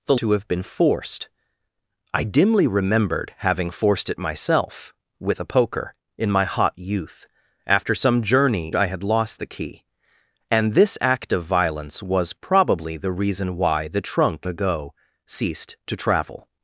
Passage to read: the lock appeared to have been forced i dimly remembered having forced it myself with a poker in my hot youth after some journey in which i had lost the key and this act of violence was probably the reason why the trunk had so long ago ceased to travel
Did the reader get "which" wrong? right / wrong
wrong